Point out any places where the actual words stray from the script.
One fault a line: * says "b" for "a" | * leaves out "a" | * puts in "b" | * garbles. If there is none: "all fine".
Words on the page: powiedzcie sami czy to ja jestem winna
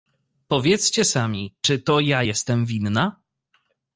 all fine